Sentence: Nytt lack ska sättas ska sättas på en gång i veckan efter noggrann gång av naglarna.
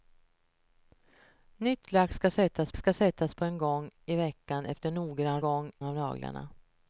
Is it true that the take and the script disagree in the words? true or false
false